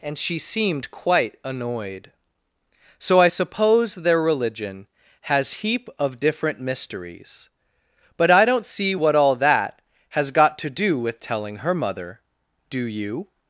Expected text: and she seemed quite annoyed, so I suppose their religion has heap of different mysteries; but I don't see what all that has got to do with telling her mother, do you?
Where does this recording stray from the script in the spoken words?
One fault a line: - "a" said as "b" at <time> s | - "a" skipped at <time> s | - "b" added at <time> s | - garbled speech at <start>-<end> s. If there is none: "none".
none